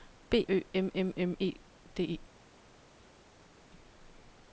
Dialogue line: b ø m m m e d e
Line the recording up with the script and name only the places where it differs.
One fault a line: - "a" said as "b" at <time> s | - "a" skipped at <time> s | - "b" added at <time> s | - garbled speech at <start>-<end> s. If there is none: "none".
none